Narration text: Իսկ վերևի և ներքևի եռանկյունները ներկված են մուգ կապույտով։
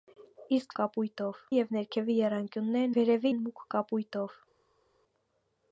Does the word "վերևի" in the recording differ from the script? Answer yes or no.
yes